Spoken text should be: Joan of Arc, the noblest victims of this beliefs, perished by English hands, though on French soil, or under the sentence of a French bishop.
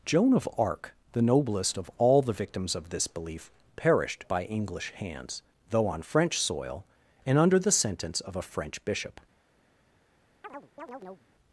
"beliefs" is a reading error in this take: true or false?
true